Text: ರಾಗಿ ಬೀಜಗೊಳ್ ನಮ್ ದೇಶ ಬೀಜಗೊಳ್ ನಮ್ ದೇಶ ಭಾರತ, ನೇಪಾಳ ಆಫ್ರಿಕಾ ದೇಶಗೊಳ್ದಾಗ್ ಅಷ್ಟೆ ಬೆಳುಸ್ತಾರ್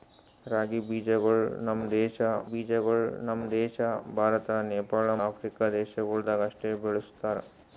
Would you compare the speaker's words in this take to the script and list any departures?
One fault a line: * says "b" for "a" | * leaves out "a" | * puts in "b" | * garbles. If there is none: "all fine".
all fine